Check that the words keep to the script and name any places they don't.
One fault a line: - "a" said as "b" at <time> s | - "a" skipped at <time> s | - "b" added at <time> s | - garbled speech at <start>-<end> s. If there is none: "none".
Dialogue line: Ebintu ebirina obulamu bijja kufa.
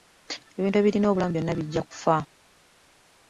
- "byonna" added at 1.3 s